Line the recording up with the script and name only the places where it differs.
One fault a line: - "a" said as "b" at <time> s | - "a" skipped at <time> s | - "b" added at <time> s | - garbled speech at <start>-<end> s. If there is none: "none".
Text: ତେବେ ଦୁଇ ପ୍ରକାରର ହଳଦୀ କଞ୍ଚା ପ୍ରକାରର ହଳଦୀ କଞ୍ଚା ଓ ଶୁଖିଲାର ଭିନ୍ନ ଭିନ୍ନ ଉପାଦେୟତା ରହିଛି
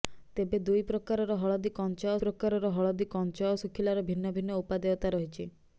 none